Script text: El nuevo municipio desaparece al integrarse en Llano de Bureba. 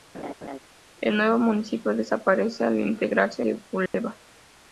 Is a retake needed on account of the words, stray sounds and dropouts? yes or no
yes